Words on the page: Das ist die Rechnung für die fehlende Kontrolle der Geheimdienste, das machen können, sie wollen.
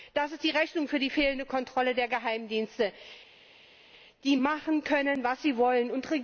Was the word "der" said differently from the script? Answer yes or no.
no